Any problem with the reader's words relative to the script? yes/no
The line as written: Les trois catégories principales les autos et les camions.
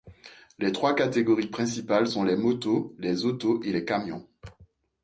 yes